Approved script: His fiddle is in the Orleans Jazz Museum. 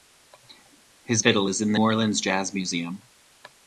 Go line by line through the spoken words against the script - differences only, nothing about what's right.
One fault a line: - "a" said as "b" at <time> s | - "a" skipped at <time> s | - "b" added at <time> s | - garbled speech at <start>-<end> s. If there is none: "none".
none